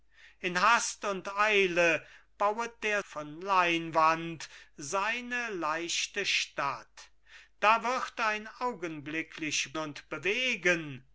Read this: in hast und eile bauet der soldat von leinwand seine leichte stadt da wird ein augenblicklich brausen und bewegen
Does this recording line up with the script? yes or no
no